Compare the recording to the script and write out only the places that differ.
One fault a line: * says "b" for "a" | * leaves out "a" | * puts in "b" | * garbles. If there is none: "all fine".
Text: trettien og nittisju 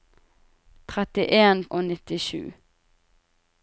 all fine